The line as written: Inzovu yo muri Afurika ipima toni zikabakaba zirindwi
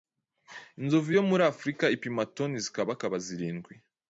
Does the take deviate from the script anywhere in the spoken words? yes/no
no